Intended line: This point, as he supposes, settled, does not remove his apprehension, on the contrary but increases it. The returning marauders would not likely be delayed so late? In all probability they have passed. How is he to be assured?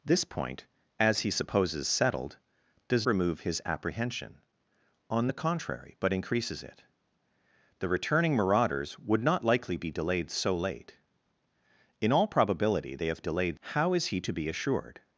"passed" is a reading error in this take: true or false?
true